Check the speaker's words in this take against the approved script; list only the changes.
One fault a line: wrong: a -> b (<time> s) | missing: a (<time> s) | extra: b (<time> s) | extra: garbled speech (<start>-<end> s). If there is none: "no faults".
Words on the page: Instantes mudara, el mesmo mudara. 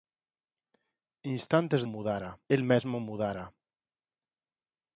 no faults